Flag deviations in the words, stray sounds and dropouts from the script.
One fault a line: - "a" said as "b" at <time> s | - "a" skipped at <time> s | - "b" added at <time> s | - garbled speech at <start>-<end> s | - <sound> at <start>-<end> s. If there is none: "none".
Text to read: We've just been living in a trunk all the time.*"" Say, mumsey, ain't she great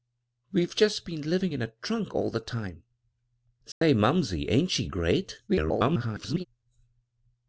- dropout at 3.7-3.8 s
- garbled speech at 5.5-6.5 s